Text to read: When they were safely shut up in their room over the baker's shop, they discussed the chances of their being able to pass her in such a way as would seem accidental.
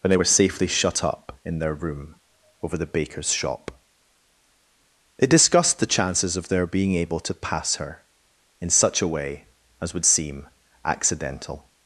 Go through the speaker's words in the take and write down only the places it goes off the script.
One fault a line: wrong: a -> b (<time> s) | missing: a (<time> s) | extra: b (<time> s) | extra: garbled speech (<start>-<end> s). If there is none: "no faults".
no faults